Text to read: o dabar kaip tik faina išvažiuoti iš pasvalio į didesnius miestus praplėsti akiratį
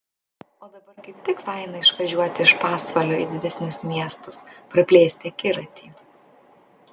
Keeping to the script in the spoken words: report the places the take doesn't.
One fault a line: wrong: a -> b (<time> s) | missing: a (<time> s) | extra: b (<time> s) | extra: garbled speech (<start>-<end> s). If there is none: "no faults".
no faults